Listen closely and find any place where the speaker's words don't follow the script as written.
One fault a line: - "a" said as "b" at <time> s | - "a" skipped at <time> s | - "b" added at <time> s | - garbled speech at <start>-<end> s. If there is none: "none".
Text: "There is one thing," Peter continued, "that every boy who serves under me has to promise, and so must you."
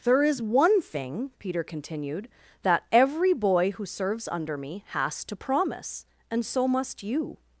none